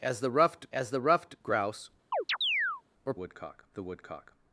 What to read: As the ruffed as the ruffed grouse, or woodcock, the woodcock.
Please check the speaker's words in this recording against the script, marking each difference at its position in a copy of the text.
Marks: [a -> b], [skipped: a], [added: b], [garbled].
As the ruffed as the ruffed grouse, or woodcock, the woodcock.